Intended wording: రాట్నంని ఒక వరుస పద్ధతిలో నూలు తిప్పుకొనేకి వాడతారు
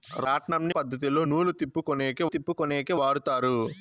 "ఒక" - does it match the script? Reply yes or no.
no